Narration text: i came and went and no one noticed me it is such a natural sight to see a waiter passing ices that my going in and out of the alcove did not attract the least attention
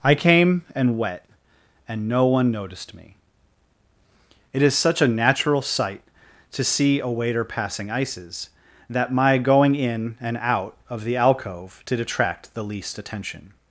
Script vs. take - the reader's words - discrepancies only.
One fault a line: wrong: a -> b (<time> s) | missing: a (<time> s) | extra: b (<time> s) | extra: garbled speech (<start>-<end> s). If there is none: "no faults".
wrong: went -> wet (1.0 s)
missing: not (12.0 s)